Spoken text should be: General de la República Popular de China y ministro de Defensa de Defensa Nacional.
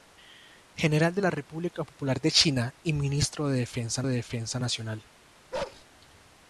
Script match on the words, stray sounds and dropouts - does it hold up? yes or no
no